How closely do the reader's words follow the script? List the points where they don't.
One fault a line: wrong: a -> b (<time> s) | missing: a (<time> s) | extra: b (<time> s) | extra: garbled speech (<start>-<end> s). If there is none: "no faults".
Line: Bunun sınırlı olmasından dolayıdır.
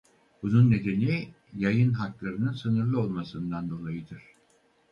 extra: nedeni yayın haklarının (0.7 s)